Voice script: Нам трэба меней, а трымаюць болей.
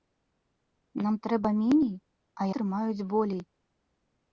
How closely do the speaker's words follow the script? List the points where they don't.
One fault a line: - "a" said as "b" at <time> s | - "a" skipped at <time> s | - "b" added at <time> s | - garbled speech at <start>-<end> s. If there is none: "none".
none